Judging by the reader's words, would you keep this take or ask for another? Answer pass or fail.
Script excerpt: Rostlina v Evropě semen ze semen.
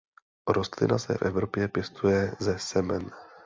fail